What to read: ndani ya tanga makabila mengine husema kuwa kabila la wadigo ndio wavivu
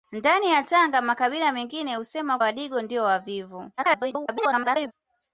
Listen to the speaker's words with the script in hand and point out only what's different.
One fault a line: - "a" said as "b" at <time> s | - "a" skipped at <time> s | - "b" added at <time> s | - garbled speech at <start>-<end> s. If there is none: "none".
- "kuwa kabila la" skipped at 2.4 s
- garbled speech at 3.8-4.9 s